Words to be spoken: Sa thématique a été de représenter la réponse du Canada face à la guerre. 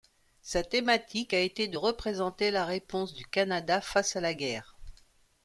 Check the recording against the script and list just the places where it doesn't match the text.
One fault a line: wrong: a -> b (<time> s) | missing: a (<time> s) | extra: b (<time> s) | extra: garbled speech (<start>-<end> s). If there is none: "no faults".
no faults